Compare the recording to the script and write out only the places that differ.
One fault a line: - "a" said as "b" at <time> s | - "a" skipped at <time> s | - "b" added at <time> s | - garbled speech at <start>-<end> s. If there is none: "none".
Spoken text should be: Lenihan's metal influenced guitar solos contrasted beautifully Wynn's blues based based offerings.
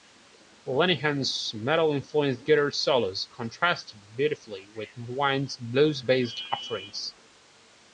- "with" added at 4.8 s
- "based" skipped at 6.4 s